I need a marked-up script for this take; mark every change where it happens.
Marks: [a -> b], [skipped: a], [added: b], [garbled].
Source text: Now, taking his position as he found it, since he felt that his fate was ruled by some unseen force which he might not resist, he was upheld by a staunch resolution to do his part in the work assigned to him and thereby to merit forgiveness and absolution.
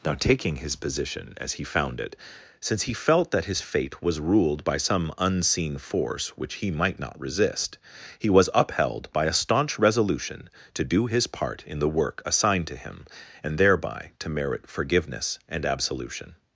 Now, taking his position as he found it, since he felt that his fate was ruled by some unseen force which he might not resist, he was upheld by a staunch resolution to do his part in the work assigned to him and thereby to merit forgiveness and absolution.